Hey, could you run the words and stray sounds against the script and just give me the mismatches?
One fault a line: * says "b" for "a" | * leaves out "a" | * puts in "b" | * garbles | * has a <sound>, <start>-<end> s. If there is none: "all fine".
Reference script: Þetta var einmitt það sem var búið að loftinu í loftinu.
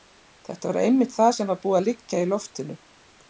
* says "liggja" for "loftinu"